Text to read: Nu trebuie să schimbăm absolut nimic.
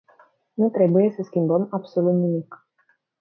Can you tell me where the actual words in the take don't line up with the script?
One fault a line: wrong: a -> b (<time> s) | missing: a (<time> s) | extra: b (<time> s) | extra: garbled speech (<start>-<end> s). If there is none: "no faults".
no faults